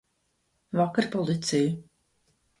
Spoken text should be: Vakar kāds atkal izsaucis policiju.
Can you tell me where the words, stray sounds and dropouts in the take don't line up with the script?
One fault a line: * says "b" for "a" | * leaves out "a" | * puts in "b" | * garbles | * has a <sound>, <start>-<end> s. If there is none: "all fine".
* leaves out "kāds atkal izsaucis"